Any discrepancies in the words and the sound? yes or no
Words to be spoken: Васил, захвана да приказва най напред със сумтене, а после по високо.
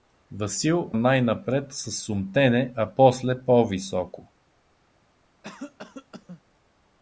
yes